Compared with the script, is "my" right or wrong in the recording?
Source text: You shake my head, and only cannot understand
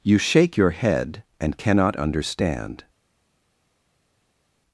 wrong